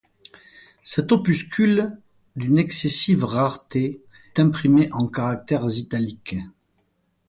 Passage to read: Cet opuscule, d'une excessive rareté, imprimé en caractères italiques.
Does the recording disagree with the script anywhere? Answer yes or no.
no